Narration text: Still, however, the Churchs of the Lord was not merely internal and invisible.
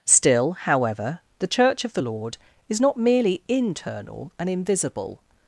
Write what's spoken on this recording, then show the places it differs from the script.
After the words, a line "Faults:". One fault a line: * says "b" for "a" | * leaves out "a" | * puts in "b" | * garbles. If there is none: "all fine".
Still, however, the Church of the Lord is not merely internal and invisible.
Faults:
* says "Church" for "Churchs"
* says "is" for "was"